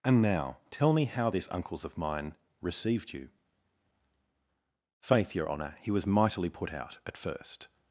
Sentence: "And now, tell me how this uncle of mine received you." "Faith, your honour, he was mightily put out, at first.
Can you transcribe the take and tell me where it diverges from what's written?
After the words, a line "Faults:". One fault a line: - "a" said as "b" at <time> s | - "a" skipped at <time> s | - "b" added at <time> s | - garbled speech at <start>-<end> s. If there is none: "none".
"And now, tell me how this uncles of mine received you." "Faith, your honour, he was mightily put out, at first.
Faults:
- "uncle" said as "uncles" at 1.5 s